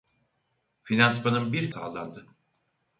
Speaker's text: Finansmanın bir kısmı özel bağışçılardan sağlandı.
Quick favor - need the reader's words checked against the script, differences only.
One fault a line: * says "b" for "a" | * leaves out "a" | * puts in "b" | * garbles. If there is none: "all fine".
* leaves out "kısmı özel bağışçılardan"